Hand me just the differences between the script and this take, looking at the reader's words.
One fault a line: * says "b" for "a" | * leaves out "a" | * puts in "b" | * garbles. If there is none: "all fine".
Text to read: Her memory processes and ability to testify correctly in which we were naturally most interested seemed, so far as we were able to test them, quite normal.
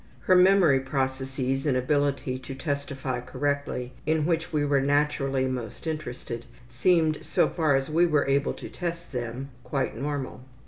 all fine